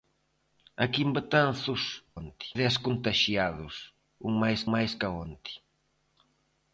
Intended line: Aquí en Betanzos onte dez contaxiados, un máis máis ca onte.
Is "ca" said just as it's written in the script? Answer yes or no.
yes